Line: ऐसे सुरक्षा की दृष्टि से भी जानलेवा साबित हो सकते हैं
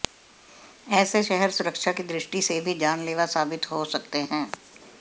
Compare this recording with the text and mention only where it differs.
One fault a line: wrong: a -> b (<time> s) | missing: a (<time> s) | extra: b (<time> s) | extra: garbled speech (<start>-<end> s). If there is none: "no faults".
extra: शहर (1.2 s)